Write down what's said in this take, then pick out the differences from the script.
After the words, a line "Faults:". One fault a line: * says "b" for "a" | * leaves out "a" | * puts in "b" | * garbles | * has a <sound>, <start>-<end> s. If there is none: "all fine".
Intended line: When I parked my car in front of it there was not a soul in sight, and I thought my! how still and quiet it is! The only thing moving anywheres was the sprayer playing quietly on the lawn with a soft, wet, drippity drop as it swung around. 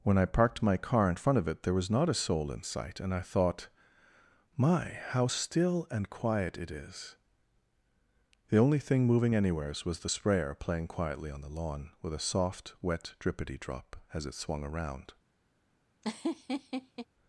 When I parked my car in front of it there was not a soul in sight, and I thought my! how still and quiet it is! The only thing moving anywheres was the sprayer playing quietly on the lawn with a soft, wet, drippity drop as it swung around.
Faults:
* has a laugh, 16.0-17.1 s